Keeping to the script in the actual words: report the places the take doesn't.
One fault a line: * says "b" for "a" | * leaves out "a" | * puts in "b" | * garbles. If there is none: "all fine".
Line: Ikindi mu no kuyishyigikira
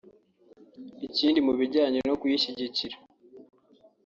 * puts in "bijyanye"